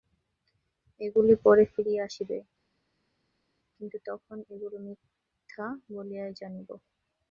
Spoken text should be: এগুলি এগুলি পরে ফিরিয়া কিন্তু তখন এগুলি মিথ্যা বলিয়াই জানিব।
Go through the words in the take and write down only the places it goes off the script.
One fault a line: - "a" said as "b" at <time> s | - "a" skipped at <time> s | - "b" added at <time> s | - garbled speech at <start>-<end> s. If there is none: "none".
- "এগুলি" skipped at 1.3 s
- "আসিবে" added at 2.1 s